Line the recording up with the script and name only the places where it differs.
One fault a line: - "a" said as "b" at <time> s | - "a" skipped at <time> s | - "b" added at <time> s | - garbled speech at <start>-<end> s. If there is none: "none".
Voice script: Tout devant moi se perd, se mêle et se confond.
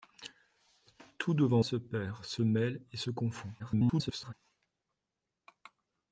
- "moi" skipped at 1.6 s
- garbled speech at 3.6-4.3 s